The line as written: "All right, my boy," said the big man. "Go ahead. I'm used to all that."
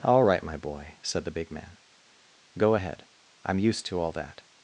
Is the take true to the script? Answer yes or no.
yes